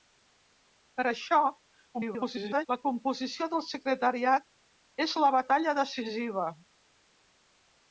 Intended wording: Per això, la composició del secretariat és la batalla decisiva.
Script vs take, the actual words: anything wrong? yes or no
yes